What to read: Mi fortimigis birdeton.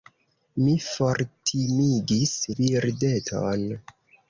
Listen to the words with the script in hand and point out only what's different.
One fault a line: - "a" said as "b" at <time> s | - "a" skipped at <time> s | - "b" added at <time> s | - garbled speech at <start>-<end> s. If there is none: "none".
none